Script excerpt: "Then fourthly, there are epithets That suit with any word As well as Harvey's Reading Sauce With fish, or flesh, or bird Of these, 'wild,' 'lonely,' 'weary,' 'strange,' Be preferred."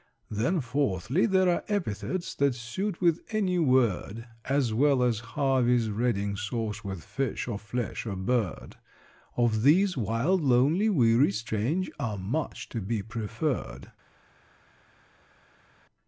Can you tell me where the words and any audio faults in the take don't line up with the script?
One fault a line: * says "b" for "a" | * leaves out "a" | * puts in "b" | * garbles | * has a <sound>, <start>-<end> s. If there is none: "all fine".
* puts in "Are much to"